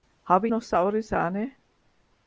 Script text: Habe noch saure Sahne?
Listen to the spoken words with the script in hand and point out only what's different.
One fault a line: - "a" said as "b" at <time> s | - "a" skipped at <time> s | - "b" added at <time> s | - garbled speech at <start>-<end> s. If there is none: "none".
none